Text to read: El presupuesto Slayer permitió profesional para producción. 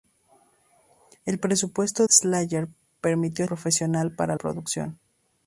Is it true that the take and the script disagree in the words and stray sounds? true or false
false